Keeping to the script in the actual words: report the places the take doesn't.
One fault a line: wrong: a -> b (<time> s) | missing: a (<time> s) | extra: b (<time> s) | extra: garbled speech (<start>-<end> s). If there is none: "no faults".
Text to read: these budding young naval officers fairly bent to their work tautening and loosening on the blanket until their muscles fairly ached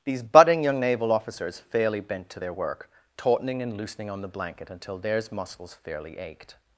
wrong: their -> theirs (5.0 s)